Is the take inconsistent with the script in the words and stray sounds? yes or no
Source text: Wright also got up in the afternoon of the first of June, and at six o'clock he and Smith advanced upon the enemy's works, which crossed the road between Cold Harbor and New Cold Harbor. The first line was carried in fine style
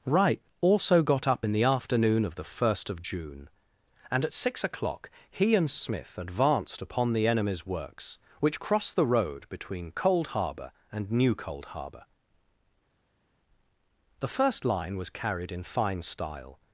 no